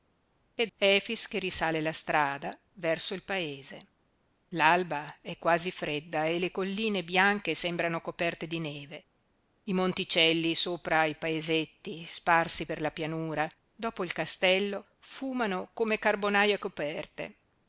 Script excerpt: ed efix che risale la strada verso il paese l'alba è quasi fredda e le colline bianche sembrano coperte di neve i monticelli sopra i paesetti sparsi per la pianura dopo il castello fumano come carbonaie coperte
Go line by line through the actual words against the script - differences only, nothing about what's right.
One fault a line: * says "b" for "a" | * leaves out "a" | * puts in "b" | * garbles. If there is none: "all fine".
all fine